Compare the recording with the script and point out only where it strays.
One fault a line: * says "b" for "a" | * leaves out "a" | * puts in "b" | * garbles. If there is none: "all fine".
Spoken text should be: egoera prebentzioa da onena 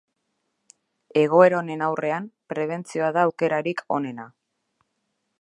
* puts in "honen aurrean"
* puts in "aukerarik"